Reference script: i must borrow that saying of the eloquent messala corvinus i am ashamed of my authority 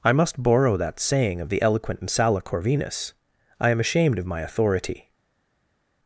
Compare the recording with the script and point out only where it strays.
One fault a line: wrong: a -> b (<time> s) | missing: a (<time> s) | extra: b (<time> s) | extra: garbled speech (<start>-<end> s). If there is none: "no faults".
no faults